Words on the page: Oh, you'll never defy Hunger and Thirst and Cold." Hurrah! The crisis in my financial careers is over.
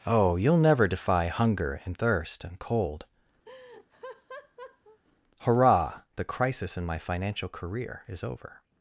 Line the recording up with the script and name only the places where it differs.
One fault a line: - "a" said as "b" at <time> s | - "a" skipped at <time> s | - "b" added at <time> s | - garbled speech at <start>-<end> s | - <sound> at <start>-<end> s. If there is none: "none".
- laugh at 3.4-5.0 s
- "careers" said as "career" at 7.5 s